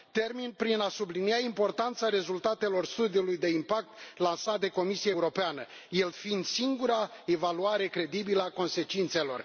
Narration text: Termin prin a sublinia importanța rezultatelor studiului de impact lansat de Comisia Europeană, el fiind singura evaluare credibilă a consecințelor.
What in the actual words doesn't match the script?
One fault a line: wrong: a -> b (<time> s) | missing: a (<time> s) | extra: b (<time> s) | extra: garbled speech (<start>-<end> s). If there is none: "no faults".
no faults